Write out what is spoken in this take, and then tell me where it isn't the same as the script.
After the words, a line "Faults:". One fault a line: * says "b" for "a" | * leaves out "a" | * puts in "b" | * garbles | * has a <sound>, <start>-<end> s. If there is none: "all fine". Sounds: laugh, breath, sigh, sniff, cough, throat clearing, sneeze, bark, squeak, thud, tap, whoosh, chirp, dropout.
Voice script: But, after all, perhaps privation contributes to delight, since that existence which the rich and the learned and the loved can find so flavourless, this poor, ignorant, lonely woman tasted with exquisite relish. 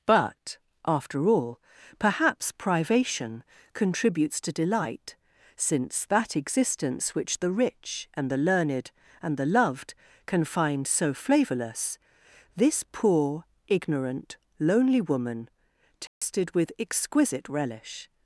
But, after all, perhaps privation contributes to delight, since that existence which the rich and the learned and the loved can find so flavourless, this poor, ignorant, lonely woman tasted with exquisite relish.
Faults:
* has a dropout, 16.1-16.2 s